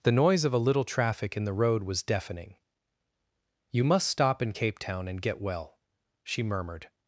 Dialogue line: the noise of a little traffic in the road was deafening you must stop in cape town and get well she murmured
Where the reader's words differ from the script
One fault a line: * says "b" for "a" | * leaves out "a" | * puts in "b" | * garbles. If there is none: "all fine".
all fine